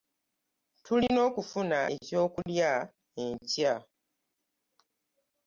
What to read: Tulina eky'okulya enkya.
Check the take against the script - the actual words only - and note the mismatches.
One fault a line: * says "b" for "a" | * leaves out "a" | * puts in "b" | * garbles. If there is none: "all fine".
* puts in "okufuna"